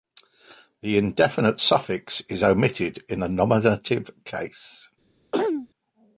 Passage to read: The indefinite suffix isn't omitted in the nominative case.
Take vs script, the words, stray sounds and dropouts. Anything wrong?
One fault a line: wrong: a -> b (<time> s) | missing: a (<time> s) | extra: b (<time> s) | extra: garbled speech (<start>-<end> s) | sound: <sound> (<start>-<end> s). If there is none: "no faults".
wrong: isn't -> is (2.3 s)
sound: throat clearing (5.3-5.7 s)